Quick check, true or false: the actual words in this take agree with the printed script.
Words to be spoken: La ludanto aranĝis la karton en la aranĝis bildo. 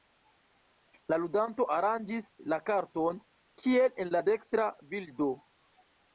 false